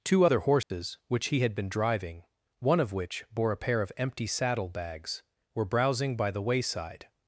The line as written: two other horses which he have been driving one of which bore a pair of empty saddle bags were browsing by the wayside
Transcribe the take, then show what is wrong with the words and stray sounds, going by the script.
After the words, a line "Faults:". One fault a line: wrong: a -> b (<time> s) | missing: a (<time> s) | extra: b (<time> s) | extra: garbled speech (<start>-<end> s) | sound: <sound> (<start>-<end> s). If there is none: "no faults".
two other horses which he had been driving one of which bore a pair of empty saddle bags were browsing by the wayside
Faults:
sound: dropout (0.6-0.7 s)
wrong: have -> had (1.4 s)